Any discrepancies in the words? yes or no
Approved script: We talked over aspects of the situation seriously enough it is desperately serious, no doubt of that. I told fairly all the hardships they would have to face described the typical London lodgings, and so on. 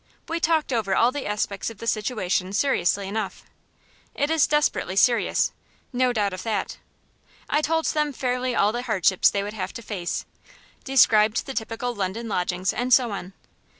yes